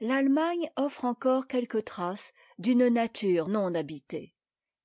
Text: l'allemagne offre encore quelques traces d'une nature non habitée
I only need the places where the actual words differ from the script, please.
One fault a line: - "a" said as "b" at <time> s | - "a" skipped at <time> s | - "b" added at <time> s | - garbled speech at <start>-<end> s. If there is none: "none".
none